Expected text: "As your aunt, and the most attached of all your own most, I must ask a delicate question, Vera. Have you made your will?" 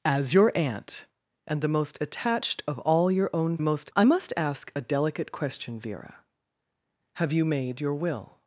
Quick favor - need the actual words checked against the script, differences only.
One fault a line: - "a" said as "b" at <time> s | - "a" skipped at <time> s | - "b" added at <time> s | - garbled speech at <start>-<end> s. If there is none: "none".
none